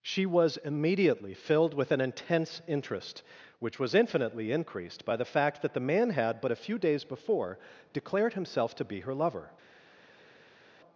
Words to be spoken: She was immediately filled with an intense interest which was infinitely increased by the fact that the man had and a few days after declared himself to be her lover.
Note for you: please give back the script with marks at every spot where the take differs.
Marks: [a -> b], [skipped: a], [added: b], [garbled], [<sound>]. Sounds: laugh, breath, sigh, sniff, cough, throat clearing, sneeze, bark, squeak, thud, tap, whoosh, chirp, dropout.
She was immediately filled with an intense interest which was infinitely increased by the fact that the man had [and -> but] a few days [after -> before] declared himself to be her lover.